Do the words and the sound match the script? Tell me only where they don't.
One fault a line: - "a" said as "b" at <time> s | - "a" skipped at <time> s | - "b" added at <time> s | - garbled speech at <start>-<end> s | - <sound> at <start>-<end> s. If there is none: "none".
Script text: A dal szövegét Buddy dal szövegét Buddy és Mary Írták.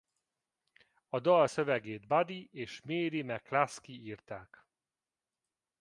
- "dal szövegét Buddy" skipped at 2.5 s
- "McCluskey" added at 3.2 s